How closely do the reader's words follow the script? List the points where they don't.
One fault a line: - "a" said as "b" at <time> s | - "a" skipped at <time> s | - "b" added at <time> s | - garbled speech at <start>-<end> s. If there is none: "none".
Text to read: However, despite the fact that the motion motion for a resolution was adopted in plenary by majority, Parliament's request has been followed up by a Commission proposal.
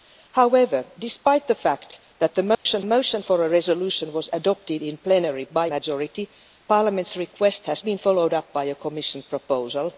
none